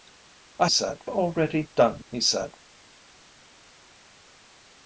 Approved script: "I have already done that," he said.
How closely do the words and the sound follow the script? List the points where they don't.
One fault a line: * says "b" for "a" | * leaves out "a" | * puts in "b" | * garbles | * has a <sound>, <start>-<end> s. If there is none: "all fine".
* says "said" for "have"
* leaves out "that"